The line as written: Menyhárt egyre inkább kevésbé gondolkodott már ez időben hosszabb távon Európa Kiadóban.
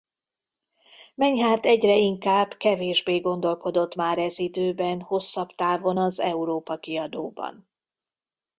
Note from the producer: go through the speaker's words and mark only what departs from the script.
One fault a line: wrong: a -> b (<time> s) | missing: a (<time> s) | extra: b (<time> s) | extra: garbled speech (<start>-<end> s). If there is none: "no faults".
extra: az (6.0 s)